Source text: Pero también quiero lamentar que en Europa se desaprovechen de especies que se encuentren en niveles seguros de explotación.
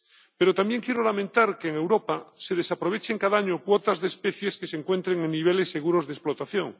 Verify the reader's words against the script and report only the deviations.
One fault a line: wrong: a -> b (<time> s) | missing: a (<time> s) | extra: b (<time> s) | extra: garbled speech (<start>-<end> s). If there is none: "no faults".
extra: cada año cuotas (3.2 s)